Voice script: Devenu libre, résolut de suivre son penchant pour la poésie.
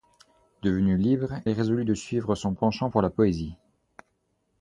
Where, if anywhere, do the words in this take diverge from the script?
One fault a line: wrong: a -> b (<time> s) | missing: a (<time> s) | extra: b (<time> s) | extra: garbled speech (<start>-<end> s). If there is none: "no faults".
no faults